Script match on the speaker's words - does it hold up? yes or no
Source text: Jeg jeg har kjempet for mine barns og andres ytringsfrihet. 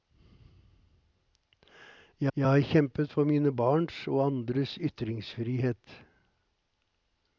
yes